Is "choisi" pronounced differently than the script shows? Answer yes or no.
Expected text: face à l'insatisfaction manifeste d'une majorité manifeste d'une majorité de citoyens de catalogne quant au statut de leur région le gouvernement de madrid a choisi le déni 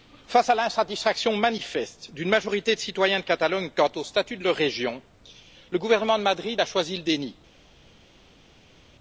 no